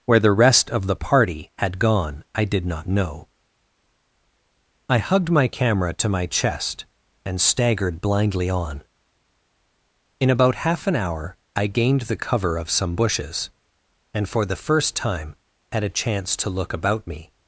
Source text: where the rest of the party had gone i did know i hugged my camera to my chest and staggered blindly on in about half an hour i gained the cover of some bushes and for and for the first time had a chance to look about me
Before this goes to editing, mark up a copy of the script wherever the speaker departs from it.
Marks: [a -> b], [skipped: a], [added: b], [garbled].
where the rest of the party had gone i did [added: not] know i hugged my camera to my chest and staggered blindly on in about half an hour i gained the cover of some bushes and for [skipped: and for] the first time had a chance to look about me